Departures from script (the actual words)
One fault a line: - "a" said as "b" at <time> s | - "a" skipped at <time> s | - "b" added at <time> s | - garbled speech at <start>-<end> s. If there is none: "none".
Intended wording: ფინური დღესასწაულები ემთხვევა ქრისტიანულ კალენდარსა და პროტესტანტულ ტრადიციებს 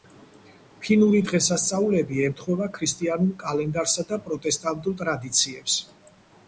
none